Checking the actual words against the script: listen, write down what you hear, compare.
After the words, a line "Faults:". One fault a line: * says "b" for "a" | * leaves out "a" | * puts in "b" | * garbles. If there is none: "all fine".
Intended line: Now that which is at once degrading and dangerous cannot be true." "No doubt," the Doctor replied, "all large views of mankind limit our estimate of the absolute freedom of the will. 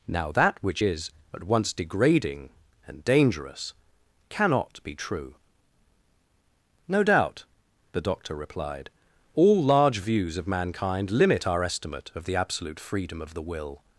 Now that which is at once degrading and dangerous cannot be true." "No doubt," the Doctor replied, "all large views of mankind limit our estimate of the absolute freedom of the will.
Faults:
all fine